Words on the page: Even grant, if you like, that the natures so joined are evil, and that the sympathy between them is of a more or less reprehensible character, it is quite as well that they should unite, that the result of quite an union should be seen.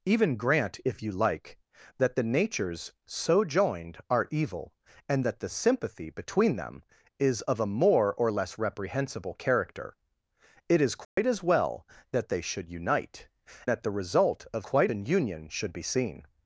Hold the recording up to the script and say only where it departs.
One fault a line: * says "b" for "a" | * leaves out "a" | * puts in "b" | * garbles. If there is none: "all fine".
all fine